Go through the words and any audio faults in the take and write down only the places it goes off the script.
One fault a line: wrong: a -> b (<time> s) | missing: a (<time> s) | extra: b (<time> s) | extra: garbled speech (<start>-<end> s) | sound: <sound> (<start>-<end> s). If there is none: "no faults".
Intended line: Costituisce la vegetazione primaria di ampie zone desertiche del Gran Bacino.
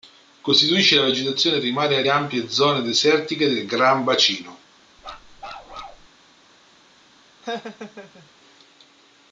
missing: di (2.0 s)
sound: bark (5.0-6.1 s)
sound: laugh (7.4-8.3 s)